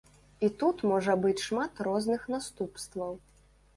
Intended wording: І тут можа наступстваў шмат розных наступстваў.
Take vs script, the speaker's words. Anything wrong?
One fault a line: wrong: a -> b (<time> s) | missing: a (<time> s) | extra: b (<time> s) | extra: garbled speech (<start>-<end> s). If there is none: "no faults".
wrong: наступстваў -> быць (1.2 s)